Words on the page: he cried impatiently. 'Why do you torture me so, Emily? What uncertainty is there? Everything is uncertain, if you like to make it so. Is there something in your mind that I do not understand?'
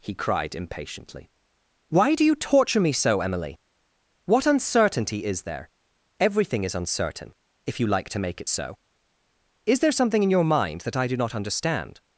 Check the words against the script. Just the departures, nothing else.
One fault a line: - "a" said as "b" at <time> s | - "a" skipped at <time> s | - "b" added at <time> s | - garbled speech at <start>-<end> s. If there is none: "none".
none